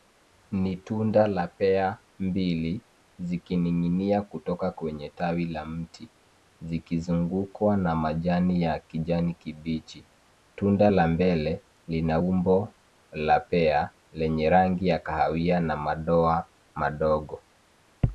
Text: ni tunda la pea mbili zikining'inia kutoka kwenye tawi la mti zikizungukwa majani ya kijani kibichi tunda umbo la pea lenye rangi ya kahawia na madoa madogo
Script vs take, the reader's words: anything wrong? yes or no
yes